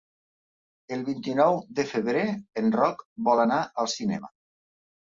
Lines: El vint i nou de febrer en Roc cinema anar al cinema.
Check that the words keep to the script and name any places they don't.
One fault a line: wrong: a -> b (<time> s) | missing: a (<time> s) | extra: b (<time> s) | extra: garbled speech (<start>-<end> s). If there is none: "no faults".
wrong: cinema -> vol (3.3 s)